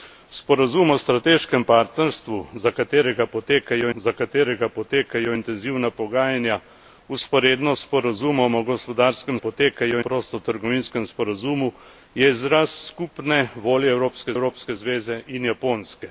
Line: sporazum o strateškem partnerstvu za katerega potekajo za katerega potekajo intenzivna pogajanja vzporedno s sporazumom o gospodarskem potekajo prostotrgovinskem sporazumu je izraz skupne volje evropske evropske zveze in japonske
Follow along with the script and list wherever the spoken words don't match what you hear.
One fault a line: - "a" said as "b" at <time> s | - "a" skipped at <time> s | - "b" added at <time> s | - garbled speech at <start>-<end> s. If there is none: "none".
none